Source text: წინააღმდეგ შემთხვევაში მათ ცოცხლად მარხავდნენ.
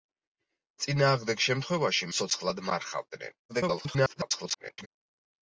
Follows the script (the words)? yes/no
no